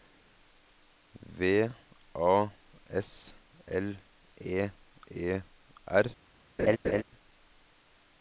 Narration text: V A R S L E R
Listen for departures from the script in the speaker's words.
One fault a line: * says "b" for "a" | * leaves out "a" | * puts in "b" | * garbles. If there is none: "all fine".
* leaves out "R"
* puts in "E"